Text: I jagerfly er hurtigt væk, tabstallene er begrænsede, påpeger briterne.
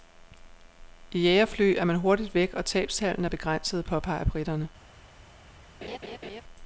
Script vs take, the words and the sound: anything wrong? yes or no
yes